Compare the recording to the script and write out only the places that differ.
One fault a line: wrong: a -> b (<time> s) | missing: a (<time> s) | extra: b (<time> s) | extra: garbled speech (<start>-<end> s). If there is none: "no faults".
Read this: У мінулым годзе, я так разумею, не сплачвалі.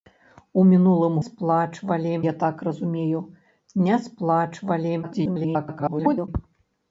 wrong: годзе -> сплачвалі (1.3 s)
extra: garbled speech (5.0-6.3 s)